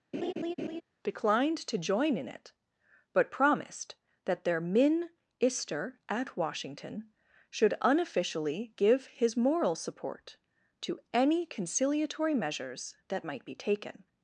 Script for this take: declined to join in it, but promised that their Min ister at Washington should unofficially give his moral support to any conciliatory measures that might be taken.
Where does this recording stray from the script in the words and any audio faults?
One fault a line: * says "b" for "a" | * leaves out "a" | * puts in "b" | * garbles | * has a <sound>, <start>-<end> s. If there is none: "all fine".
* has a laugh, 0.1-0.8 s